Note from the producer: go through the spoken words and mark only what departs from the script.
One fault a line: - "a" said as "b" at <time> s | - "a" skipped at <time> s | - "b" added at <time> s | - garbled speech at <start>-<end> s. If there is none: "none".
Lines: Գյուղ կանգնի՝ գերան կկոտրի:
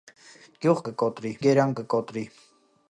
- "կանգնի" said as "կկոտրի" at 0.9 s